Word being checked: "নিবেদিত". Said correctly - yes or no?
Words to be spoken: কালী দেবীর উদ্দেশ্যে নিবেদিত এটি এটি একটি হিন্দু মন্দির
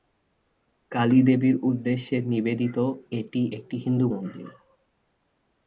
yes